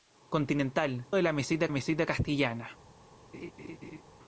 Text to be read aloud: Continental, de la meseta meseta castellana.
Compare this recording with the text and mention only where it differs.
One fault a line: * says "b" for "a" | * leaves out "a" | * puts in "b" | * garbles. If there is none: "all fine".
all fine